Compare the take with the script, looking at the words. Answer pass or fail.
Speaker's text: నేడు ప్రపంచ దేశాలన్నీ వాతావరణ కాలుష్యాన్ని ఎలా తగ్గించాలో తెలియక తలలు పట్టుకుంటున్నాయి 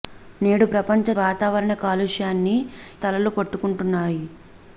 fail